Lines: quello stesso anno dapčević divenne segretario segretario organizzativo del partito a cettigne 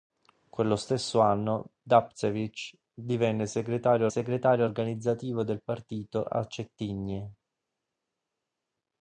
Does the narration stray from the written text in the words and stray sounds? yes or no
no